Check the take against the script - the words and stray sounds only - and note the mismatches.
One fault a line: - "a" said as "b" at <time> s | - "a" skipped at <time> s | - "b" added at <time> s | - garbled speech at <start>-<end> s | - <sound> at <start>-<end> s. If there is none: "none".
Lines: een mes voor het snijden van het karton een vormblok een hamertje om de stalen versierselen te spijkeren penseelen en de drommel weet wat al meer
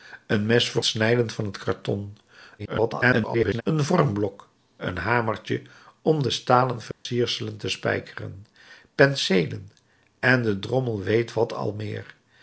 - "het" skipped at 0.8 s
- garbled speech at 2.6-3.6 s
- dropout at 6.9-7.1 s